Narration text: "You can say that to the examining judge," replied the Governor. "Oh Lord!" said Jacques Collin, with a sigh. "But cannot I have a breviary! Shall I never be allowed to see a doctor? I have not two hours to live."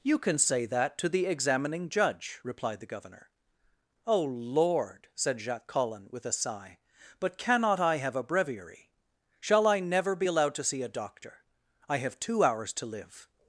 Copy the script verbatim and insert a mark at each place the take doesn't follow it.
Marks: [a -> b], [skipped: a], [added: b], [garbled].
"You can say that to the examining judge," replied the Governor. "Oh Lord!" said Jacques Collin, with a sigh. "But cannot I have a breviary! Shall I never be allowed to see a doctor? I have [skipped: not] two hours to live."